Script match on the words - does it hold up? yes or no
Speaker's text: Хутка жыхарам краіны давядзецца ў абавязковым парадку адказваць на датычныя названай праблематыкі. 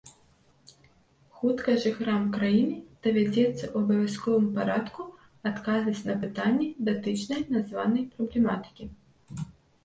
no